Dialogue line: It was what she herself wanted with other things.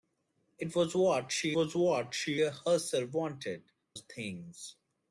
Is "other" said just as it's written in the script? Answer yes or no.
no